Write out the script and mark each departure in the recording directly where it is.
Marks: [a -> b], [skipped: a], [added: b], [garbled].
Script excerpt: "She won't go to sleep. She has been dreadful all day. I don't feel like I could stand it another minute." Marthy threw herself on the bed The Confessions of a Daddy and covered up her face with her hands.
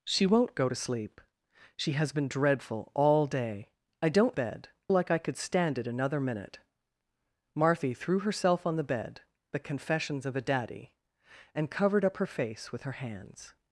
"She won't go to sleep. She has been dreadful all day. I don't [feel -> bed] like I could stand it another minute." Marthy threw herself on the bed The Confessions of a Daddy and covered up her face with her hands.